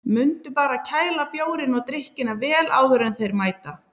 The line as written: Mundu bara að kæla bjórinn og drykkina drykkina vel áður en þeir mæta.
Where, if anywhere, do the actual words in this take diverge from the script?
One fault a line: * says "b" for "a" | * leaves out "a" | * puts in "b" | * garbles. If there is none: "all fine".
* leaves out "drykkina"